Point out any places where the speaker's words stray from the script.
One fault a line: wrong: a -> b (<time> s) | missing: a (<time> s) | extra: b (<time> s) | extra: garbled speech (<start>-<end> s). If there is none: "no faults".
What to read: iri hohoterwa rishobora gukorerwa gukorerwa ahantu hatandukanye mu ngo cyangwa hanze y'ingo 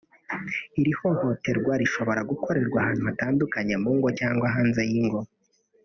missing: gukorerwa (2.8 s)